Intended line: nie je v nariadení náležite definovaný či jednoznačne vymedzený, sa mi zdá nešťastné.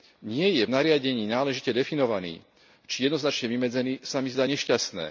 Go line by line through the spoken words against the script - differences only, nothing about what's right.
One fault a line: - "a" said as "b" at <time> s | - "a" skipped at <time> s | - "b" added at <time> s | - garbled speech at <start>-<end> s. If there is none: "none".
none